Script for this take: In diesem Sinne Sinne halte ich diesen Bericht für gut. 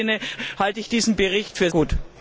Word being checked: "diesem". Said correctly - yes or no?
yes